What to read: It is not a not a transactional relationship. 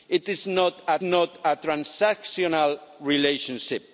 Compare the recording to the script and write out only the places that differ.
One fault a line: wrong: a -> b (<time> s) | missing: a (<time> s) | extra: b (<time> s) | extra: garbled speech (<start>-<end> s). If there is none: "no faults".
no faults